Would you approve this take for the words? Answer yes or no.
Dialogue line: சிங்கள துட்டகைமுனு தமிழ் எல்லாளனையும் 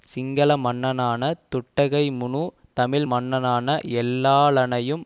no